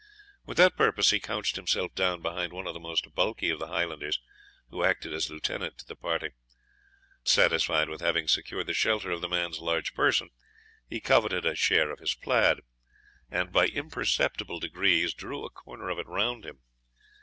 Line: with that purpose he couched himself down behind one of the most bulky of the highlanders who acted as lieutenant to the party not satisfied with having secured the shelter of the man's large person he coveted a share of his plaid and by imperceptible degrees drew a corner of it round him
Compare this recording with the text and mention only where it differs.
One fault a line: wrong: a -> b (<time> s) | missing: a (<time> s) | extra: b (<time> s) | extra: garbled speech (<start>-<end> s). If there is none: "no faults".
missing: not (6.3 s)